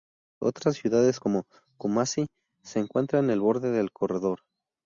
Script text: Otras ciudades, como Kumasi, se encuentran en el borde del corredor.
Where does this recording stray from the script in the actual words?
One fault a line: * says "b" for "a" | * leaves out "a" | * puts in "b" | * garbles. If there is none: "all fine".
all fine